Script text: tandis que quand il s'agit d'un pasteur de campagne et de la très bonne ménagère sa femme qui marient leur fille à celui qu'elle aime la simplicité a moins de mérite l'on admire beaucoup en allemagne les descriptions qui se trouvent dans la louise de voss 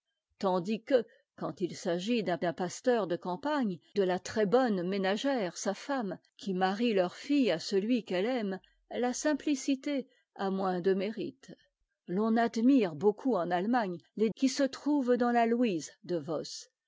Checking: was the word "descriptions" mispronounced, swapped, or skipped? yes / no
yes